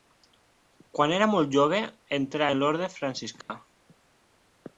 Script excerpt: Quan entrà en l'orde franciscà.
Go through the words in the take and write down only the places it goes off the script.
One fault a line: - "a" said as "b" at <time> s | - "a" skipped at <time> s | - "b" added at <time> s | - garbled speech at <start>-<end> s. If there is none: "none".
- "era molt jove" added at 1.2 s